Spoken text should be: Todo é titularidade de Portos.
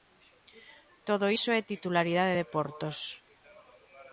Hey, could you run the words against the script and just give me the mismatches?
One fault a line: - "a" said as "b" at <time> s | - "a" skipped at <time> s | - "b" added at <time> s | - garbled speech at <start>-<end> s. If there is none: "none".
- "iso" added at 1.4 s